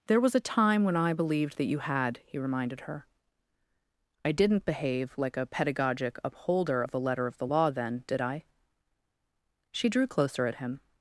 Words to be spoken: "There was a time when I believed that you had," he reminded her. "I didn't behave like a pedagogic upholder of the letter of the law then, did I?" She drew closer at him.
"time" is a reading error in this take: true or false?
false